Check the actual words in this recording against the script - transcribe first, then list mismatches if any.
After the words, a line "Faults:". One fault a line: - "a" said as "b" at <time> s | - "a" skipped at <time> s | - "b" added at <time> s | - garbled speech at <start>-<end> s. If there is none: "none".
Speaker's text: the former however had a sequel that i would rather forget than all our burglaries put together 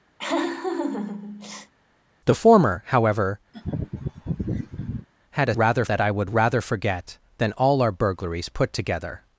the former however had a rather that i would rather forget than all our burglaries put together
Faults:
- "sequel" said as "rather" at 5.6 s